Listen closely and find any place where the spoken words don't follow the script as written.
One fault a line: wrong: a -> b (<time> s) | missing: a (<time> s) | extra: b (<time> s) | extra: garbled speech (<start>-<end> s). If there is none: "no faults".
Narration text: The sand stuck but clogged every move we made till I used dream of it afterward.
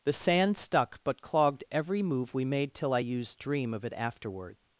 no faults